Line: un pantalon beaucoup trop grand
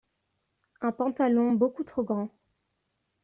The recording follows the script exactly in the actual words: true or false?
true